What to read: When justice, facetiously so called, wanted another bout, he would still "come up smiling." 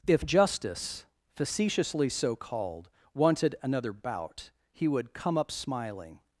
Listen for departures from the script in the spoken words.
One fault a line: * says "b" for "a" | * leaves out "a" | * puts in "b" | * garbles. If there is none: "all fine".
* says "If" for "When"
* leaves out "still"